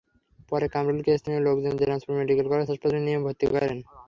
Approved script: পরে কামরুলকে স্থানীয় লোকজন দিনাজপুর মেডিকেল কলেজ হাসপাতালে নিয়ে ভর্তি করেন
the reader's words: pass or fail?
pass